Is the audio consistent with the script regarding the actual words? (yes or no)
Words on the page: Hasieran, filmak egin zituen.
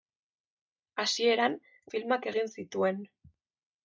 yes